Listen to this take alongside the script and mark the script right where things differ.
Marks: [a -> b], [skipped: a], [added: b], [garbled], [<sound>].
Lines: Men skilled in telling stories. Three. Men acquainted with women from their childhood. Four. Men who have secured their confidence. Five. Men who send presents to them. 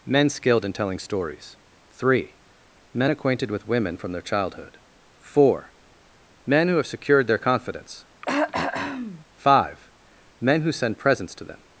Men skilled in telling stories. Three. Men acquainted with women from their childhood. Four. Men who have secured their confidence. [throat clearing] Five. Men who send presents to them.